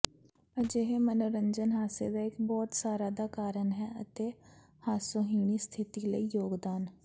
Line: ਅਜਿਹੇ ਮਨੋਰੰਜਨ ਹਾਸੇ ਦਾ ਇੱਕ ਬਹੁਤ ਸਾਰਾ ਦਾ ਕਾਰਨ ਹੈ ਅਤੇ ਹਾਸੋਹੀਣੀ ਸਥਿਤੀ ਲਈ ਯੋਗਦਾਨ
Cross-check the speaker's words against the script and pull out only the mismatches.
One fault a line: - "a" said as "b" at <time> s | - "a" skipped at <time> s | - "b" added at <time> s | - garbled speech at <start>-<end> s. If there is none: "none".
none